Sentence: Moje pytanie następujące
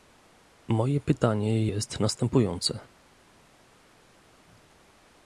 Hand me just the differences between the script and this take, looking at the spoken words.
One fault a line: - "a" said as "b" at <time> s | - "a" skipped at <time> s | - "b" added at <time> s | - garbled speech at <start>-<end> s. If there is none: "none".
- "jest" added at 1.6 s